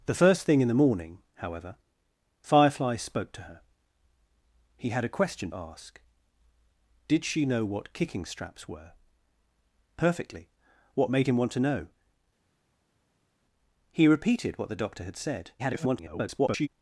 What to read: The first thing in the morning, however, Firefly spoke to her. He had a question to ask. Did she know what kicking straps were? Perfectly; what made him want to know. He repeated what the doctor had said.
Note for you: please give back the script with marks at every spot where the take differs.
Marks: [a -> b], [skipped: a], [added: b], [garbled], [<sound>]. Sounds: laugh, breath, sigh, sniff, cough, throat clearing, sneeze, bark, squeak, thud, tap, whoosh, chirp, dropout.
The first thing in the morning, however, Firefly spoke to her. He had a question [skipped: to] ask. Did she know what kicking straps were? Perfectly; what made him want to know. He repeated what the doctor had said. [garbled]